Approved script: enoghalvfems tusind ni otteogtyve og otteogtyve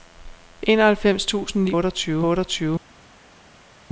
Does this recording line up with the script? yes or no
yes